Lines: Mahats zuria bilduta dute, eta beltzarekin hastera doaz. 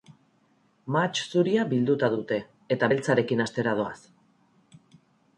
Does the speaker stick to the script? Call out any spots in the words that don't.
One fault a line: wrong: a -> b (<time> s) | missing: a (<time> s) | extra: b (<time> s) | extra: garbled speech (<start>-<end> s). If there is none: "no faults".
no faults